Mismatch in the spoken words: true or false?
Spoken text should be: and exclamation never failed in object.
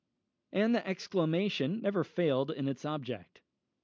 true